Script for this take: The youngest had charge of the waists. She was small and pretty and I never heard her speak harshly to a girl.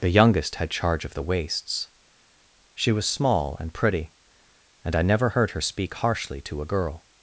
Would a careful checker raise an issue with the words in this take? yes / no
no